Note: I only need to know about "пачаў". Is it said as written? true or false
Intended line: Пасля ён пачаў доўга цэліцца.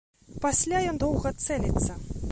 false